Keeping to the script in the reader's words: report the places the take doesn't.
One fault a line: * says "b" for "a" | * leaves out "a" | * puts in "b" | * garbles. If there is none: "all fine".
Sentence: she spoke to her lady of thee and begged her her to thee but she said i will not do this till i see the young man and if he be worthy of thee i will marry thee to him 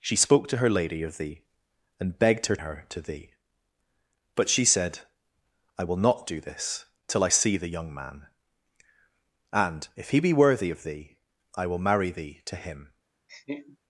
all fine